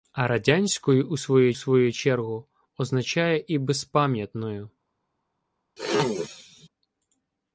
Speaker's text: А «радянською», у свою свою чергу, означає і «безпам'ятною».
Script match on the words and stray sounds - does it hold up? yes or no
no